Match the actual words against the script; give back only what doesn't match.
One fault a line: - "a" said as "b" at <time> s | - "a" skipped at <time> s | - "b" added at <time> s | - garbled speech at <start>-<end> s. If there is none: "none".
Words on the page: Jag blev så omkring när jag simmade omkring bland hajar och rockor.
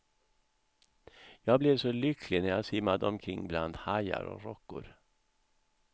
- "omkring" said as "lycklig" at 1.9 s